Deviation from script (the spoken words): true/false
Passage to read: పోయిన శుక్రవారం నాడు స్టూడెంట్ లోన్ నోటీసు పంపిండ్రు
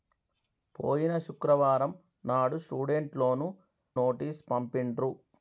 false